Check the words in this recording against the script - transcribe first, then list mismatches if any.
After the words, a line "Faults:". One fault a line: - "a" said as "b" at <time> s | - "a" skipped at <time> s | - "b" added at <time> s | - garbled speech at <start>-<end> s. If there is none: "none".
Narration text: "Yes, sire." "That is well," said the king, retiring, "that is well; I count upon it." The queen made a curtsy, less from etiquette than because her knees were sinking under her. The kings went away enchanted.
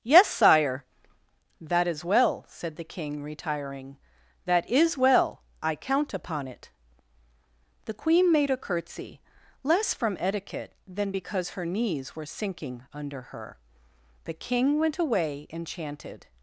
"Yes, sire." "That is well," said the king, retiring, "that is well; I count upon it." The queen made a curtsy, less from etiquette than because her knees were sinking under her. The king went away enchanted.
Faults:
- "kings" said as "king" at 14.3 s